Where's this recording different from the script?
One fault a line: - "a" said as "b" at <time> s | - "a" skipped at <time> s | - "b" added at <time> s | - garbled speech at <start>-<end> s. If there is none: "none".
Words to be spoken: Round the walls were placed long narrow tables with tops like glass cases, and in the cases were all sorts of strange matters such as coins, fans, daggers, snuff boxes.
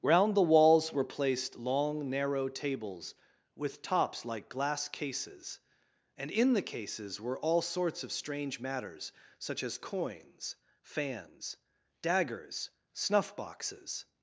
none